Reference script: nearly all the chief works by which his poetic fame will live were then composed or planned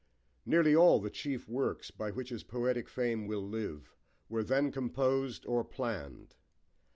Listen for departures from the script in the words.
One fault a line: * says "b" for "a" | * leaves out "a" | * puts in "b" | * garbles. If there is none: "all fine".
all fine